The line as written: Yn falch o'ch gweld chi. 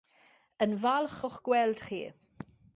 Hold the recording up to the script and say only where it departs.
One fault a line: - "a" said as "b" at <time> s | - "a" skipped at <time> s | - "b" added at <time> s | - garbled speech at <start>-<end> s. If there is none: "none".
none